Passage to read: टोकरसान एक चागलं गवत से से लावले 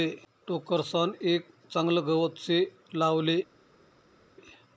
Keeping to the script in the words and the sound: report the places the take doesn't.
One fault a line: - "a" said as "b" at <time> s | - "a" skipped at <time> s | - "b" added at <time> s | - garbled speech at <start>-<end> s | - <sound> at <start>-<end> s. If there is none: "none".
- "से" skipped at 2.6 s